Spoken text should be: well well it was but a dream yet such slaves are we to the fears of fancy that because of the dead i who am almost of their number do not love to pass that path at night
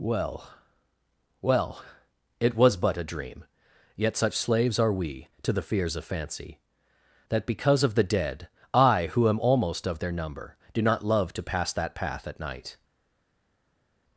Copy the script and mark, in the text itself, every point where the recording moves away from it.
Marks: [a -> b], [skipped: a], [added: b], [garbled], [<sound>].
well well it was but a dream yet such slaves are we to the fears of fancy that because of the dead i who am almost of their number do not love to pass that path at night